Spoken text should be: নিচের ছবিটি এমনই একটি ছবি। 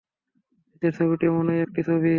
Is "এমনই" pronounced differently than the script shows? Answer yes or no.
no